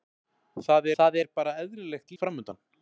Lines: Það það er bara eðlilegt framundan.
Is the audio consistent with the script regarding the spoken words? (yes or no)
yes